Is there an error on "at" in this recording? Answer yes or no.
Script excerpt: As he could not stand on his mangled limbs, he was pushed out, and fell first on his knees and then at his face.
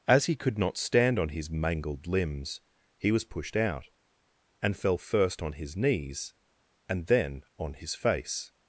yes